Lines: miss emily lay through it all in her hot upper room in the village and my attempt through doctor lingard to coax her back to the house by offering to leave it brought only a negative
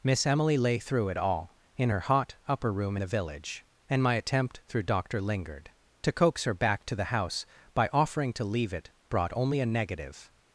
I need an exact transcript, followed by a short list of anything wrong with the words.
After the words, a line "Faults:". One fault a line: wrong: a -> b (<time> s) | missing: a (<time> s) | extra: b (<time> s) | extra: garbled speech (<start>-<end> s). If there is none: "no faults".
miss emily lay through it all in her hot upper room the village and my attempt through doctor lingard to coax her back to the house by offering to leave it brought only a negative
Faults:
missing: in (3.0 s)